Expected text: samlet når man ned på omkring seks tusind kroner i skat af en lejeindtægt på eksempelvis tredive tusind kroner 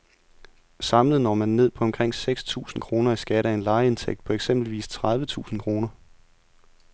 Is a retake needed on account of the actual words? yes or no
no